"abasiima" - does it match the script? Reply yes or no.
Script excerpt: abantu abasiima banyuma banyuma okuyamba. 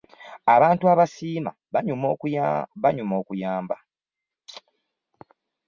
yes